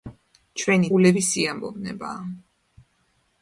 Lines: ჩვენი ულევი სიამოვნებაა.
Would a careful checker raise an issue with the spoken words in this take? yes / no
no